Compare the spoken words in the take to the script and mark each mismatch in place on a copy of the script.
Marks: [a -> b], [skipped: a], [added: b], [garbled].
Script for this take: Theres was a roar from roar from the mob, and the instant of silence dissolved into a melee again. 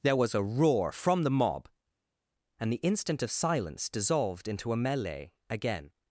[Theres -> There] was a roar from [skipped: roar from] the mob, and the instant of silence dissolved into a melee again.